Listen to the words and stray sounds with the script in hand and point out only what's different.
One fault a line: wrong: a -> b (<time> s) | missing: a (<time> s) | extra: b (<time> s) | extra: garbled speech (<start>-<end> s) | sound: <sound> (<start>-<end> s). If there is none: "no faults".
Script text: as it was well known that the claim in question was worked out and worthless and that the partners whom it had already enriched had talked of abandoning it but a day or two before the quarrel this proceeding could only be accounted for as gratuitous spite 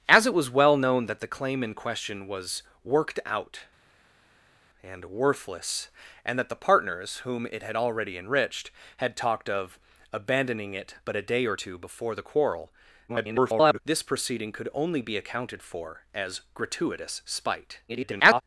extra: garbled speech (13.1-13.8 s)
extra: garbled speech (17.9-18.4 s)